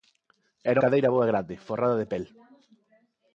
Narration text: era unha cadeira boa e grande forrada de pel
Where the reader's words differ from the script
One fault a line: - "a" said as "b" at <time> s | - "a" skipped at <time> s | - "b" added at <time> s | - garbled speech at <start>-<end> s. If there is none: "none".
- "unha" skipped at 0.8 s